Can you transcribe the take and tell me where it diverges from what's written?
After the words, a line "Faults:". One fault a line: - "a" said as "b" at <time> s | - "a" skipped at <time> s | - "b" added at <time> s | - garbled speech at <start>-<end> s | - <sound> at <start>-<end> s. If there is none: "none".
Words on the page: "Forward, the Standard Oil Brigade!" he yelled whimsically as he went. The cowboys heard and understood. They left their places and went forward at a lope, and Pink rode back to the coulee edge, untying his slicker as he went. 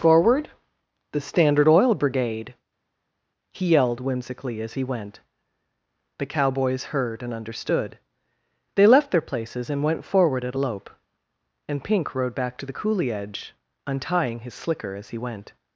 "Forward, the Standard Oil Brigade!" he yelled whimsically as he went. The cowboys heard and understood. They left their places and went forward at a lope, and Pink rode back to the coulee edge, untying his slicker as he went.
Faults:
none